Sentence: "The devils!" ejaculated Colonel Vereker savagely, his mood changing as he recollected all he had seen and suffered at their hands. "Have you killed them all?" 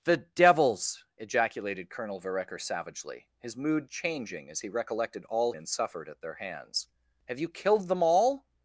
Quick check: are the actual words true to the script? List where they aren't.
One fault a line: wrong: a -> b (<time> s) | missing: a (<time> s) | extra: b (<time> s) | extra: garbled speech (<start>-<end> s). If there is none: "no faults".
missing: he had seen (5.5 s)